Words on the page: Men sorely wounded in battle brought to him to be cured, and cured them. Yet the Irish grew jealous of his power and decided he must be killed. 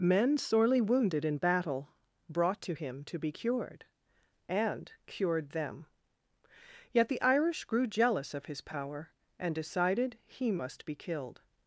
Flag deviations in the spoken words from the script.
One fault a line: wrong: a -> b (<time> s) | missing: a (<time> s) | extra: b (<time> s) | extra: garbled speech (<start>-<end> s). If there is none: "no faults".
no faults